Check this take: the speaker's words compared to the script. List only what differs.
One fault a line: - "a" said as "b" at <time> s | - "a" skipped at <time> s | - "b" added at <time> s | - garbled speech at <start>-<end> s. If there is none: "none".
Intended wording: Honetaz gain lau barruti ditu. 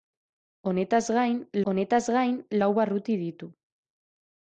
- "honetaz gain" added at 1.7 s